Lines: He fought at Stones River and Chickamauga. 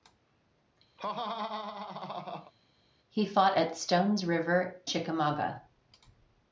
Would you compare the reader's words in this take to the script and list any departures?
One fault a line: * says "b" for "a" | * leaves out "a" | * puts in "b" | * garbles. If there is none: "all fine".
* leaves out "and"